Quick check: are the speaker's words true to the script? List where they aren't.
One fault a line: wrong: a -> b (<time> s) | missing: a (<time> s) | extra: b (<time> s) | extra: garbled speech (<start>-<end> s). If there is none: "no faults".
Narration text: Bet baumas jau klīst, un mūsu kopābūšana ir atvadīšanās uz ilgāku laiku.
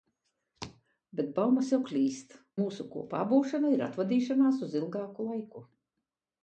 missing: un (2.4 s)